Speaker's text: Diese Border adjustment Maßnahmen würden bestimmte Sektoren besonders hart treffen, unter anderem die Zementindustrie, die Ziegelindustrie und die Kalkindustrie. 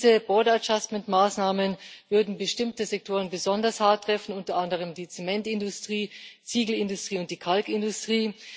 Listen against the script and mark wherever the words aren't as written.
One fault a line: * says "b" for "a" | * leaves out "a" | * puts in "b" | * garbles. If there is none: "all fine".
all fine